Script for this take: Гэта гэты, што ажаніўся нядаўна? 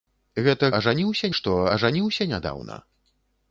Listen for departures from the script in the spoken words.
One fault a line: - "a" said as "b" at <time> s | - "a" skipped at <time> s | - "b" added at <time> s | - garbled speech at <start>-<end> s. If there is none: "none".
- "гэты" said as "ажаніўся" at 0.8 s